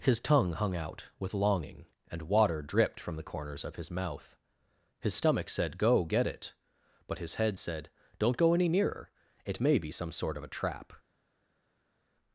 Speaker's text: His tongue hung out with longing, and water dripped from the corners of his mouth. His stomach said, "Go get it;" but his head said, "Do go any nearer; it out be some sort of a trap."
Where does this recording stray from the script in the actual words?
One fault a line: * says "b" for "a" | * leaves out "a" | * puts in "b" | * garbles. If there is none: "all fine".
* says "Don't" for "Do"
* says "may" for "out"